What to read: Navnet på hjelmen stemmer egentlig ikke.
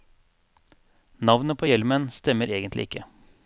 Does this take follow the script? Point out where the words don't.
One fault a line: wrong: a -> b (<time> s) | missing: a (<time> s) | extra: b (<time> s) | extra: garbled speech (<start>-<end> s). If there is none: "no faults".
no faults